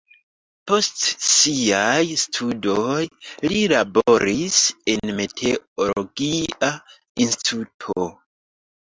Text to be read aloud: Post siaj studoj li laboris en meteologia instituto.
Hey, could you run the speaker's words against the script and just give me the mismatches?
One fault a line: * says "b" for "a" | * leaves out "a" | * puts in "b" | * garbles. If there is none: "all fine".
all fine